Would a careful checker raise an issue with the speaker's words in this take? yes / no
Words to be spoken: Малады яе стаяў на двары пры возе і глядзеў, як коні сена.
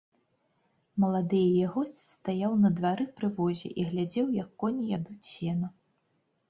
yes